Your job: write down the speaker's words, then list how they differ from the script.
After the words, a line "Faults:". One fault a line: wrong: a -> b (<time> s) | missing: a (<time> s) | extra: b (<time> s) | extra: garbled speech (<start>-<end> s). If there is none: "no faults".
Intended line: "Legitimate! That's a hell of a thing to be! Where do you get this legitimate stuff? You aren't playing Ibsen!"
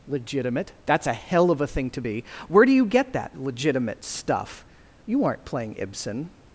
"Legitimate! That's a hell of a thing to be! Where do you get that legitimate stuff? You aren't playing Ibsen!"
Faults:
wrong: this -> that (3.1 s)